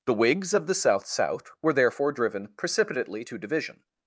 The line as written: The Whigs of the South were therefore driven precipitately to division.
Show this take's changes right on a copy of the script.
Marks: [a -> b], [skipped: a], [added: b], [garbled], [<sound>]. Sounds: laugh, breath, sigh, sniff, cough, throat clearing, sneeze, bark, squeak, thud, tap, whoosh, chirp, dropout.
The Whigs of the South [added: South] were therefore driven precipitately to division.